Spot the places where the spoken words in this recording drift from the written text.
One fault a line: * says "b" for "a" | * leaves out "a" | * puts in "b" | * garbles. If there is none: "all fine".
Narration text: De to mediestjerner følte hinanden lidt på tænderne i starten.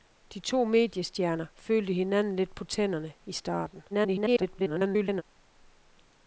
* garbles